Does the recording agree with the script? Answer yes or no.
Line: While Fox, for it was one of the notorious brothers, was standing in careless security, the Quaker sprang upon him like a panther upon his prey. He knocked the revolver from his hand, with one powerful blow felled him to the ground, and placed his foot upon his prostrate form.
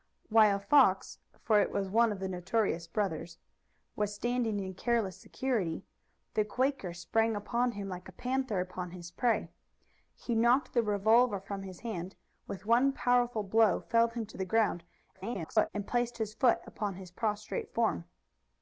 no